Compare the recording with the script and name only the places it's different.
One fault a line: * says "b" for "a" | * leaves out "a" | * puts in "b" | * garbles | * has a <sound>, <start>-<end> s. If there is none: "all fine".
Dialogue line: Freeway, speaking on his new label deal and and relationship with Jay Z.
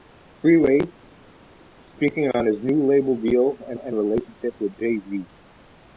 all fine